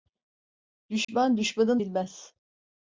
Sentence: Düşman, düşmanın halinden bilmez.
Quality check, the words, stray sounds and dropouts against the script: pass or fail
fail